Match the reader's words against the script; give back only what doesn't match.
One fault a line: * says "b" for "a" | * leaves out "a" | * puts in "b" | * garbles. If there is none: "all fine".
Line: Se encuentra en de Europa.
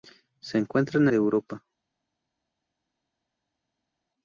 all fine